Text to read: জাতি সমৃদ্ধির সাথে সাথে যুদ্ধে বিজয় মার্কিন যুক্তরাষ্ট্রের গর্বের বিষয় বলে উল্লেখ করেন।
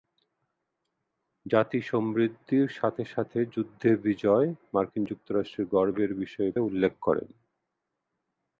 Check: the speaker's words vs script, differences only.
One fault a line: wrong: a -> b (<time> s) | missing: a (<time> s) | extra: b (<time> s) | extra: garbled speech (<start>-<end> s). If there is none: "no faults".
missing: বলে (6.5 s)